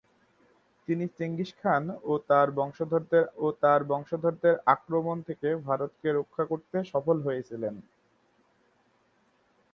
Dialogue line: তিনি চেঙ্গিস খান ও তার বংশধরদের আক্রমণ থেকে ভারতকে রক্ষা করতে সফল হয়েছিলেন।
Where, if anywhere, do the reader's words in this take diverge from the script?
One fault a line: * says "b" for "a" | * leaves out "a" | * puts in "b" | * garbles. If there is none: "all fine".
* puts in "ও তার বংশধরদের"